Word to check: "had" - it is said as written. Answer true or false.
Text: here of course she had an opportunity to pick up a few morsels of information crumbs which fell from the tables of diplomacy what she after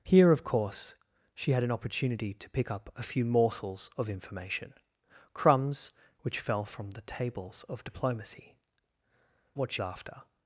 true